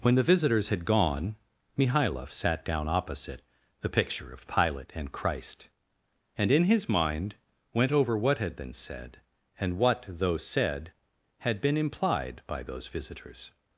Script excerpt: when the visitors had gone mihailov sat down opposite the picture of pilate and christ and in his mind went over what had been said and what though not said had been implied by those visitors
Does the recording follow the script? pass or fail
fail